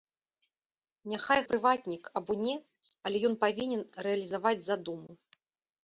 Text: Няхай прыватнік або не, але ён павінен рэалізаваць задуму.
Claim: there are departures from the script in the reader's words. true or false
false